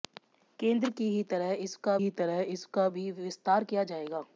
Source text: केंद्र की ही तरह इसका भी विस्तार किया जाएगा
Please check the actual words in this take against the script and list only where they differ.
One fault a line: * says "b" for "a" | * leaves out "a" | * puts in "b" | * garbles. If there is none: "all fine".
* puts in "ही तरह इसका"